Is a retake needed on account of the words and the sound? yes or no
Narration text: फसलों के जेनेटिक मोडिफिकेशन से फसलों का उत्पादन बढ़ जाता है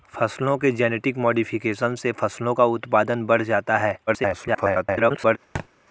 yes